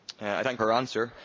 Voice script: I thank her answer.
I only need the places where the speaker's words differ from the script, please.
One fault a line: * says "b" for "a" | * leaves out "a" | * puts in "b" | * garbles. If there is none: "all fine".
all fine